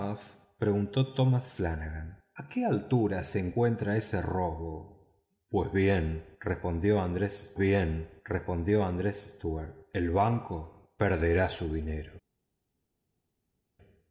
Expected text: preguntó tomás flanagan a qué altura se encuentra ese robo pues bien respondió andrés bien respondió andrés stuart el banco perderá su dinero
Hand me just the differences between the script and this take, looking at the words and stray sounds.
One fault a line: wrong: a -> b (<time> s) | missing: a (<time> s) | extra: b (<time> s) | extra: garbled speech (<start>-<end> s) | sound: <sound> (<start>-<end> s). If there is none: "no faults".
no faults